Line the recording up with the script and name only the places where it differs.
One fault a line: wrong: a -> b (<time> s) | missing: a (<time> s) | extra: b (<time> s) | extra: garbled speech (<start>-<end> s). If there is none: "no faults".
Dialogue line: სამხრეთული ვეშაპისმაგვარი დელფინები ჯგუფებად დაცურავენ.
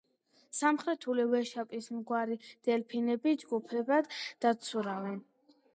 no faults